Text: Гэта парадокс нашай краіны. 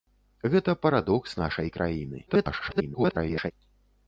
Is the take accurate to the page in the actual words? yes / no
no